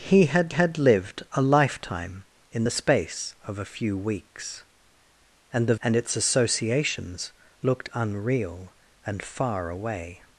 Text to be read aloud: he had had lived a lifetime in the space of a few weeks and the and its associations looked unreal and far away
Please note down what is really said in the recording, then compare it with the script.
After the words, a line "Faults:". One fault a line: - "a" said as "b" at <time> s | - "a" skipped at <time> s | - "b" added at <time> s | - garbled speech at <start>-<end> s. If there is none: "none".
he had had lived a lifetime in the space of a few weeks and the and its associations looked unreal and far away
Faults:
none